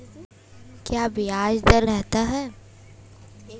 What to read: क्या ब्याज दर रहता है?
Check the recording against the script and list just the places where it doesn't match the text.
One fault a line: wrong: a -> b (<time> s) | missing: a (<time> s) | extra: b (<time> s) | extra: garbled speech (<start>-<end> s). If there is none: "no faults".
no faults